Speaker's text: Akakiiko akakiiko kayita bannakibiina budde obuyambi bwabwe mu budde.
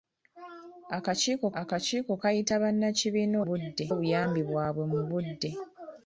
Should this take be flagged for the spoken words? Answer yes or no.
no